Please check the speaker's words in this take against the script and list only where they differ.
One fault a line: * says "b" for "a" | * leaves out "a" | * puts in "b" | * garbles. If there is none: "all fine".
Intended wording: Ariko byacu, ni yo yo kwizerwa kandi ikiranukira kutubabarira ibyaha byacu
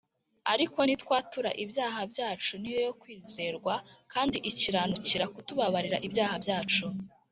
* puts in "nitwatura ibyaha"